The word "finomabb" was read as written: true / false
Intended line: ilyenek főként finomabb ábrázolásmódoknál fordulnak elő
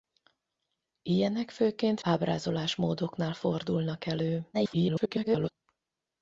false